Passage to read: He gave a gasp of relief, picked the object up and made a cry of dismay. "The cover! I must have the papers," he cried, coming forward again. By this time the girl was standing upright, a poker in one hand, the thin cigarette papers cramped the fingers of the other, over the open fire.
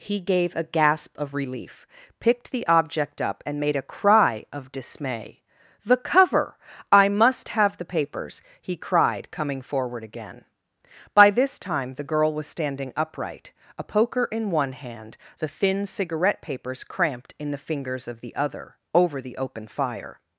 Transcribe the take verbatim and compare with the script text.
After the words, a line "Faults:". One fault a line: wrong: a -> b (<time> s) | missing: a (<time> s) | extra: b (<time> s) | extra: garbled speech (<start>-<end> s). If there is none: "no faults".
He gave a gasp of relief, picked the object up and made a cry of dismay. "The cover! I must have the papers," he cried, coming forward again. By this time the girl was standing upright, a poker in one hand, the thin cigarette papers cramped in the fingers of the other, over the open fire.
Faults:
extra: in (17.4 s)